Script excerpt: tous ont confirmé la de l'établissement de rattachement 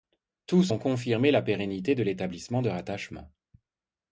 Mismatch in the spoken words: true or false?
true